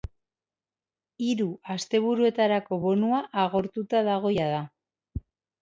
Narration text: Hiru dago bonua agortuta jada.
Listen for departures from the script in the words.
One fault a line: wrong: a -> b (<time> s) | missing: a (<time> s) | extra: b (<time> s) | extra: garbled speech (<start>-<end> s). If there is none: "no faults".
wrong: dago -> asteburuetarako (1.8 s)
extra: dago (4.1 s)